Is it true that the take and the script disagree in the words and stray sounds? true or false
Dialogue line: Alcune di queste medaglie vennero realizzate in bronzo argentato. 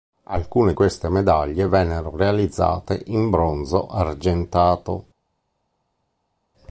true